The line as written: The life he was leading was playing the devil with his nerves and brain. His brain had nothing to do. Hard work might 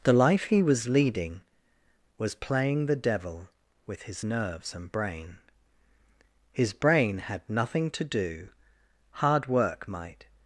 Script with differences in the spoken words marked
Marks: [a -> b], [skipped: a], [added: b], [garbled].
The life he was leading was playing the devil with his nerves and brain. His brain had nothing to do. Hard work might